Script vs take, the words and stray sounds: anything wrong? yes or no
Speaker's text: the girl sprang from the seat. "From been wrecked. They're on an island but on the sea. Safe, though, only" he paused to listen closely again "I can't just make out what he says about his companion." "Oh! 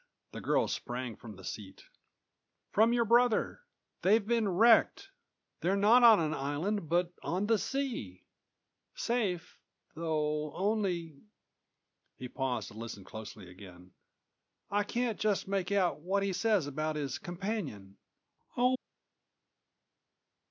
yes